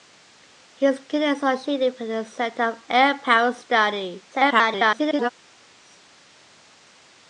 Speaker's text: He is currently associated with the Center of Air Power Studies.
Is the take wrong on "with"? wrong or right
right